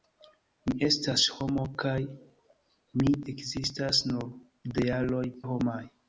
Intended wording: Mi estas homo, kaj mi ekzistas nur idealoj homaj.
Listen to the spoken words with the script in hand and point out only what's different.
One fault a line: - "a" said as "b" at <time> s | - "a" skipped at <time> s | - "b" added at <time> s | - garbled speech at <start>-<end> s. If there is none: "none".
none